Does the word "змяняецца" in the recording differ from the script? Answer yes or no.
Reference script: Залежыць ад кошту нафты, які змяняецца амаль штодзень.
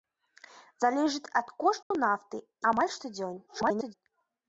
yes